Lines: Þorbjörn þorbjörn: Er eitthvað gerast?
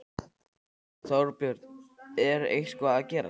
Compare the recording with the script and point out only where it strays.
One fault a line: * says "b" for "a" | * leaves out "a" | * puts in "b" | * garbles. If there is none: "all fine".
* leaves out "þorbjörn"
* puts in "að"